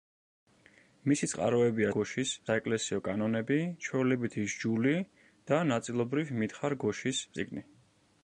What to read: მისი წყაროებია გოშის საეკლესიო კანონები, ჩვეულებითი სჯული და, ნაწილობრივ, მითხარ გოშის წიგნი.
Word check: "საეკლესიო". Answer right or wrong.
right